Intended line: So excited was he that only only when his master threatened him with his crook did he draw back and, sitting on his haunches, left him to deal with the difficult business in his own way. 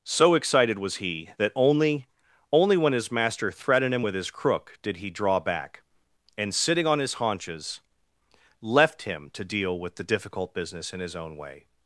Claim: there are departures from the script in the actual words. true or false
false